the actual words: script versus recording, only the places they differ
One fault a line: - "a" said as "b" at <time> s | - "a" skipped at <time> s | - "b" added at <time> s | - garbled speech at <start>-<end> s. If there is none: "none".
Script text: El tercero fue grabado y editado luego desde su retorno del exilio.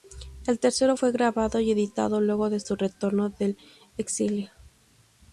- "desde" said as "de" at 2.5 s